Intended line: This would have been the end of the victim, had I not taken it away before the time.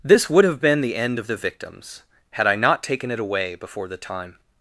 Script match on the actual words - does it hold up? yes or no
no